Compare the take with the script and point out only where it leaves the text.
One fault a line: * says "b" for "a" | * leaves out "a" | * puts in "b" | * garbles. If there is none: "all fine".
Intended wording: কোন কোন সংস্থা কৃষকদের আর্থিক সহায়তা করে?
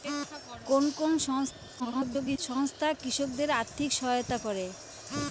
* garbles